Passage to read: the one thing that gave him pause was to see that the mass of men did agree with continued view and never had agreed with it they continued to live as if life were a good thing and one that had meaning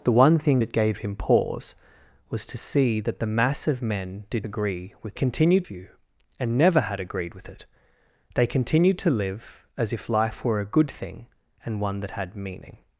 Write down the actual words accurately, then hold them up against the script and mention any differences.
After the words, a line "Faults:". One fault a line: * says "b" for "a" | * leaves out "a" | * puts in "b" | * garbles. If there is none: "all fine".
the one thing that gave him pause was to see that the mass of men did agree with continued view and never had agreed with it they continued to live as if life were a good thing and one that had meaning
Faults:
all fine